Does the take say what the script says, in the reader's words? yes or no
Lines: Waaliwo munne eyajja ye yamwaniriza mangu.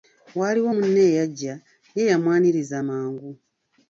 yes